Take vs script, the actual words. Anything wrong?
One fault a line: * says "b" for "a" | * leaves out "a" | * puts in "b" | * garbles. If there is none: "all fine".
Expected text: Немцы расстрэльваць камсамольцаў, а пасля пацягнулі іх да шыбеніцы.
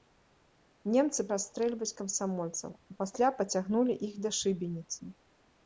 all fine